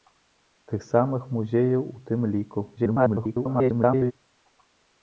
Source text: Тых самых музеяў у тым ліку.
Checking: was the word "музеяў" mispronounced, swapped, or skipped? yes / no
no